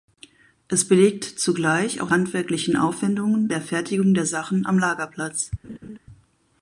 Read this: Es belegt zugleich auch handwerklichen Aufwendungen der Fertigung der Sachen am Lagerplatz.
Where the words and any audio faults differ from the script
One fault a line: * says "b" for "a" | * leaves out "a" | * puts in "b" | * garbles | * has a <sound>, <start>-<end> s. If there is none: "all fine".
* has a laugh, 5.6-6.0 s